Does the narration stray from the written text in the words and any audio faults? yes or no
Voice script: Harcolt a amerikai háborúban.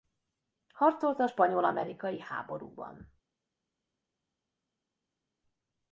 yes